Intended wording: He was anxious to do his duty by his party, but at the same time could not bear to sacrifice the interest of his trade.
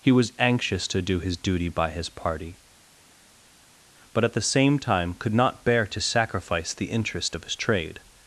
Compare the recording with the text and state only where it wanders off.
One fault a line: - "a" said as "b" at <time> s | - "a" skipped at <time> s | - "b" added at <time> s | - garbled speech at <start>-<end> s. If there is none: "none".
none